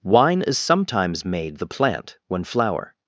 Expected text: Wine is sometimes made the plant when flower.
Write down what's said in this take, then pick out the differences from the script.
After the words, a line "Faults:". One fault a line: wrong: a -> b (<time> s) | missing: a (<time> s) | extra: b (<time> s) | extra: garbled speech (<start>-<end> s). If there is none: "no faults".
Wine is sometimes made the plant when flower.
Faults:
no faults